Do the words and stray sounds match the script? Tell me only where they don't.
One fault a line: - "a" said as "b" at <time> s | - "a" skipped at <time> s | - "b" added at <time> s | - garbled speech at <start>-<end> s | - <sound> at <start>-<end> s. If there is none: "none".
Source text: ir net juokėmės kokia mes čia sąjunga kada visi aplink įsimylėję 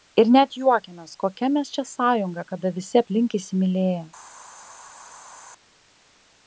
none